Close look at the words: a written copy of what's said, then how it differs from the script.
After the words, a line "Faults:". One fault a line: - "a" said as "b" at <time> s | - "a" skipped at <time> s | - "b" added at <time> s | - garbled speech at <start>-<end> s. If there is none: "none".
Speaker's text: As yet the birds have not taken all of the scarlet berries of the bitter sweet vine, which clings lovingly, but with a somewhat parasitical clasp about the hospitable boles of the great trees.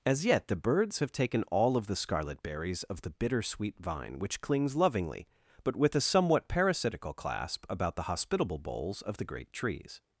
As yet the birds have taken all of the scarlet berries of the bitter sweet vine, which clings lovingly, but with a somewhat parasitical clasp about the hospitable boles of the great trees.
Faults:
- "not" skipped at 1.1 s